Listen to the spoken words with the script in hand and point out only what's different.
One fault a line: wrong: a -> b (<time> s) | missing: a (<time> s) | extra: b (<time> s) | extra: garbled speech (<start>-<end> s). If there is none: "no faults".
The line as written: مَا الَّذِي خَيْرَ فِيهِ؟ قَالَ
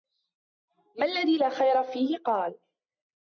extra: لَا (1.4 s)